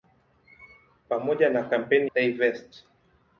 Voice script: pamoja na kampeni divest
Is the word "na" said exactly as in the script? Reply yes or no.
yes